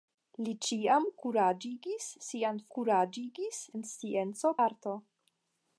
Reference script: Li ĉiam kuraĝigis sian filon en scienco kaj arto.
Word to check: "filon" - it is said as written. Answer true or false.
false